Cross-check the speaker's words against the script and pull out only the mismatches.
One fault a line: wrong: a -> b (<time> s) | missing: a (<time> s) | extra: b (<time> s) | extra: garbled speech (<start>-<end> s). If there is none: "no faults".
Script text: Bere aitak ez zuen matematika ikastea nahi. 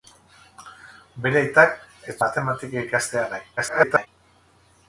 missing: zuen (2.2 s)
extra: garbled speech (3.6-4.1 s)